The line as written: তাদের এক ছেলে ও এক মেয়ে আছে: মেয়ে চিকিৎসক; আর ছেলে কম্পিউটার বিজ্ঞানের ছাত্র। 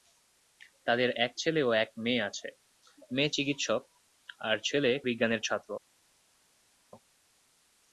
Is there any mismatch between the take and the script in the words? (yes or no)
yes